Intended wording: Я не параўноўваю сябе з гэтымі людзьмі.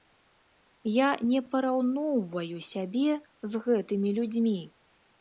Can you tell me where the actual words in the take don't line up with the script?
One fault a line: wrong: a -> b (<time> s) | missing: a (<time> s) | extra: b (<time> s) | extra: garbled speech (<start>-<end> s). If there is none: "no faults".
no faults